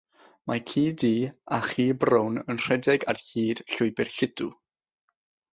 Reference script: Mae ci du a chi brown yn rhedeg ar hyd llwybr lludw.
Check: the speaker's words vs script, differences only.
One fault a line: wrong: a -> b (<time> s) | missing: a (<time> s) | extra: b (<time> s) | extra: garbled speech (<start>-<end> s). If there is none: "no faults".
no faults